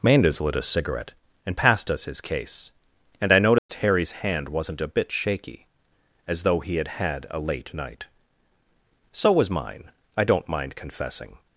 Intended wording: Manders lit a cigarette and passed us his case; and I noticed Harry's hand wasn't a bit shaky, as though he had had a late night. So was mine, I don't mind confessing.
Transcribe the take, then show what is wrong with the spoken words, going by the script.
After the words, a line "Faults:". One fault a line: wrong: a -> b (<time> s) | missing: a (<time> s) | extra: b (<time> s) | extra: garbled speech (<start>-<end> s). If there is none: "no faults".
Manders lit a cigarette and passed us his case; and I noticed Harry's hand wasn't a bit shaky, as though he had had a late night. So was mine, I don't mind confessing.
Faults:
no faults